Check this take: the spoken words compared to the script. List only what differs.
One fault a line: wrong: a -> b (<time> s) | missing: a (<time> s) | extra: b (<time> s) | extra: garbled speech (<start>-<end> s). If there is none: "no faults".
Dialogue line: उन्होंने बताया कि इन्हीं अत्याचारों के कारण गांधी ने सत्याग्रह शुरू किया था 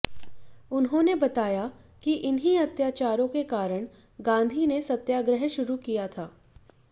no faults